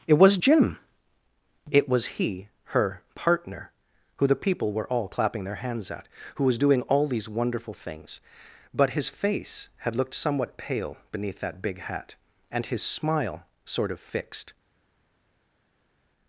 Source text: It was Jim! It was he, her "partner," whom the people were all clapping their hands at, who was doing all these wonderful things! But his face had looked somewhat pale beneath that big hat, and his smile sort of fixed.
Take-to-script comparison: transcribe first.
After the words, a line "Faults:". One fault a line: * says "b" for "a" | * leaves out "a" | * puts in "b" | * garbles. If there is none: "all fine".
It was Jim! It was he, her "partner," who the people were all clapping their hands at, who was doing all these wonderful things! But his face had looked somewhat pale beneath that big hat, and his smile sort of fixed.
Faults:
* says "who" for "whom"